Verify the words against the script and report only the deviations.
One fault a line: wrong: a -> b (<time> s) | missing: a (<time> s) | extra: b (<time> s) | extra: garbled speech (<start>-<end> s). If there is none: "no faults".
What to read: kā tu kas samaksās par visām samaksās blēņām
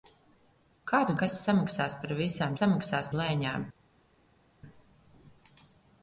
no faults